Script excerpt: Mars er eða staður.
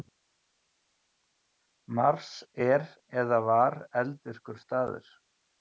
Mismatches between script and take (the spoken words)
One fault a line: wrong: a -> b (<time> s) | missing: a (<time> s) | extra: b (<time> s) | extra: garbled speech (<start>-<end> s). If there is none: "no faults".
extra: var eldvirkur (3.5 s)